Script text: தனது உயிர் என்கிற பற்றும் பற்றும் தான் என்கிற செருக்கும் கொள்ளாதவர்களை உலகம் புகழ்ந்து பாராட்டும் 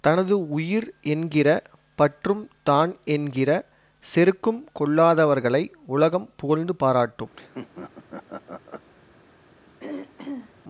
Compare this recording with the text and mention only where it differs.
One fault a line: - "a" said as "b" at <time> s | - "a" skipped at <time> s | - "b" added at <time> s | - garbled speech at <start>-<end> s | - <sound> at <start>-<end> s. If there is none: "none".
- "பற்றும்" skipped at 2.4 s
- laugh at 7.3-8.9 s
- throat clearing at 9.8-10.5 s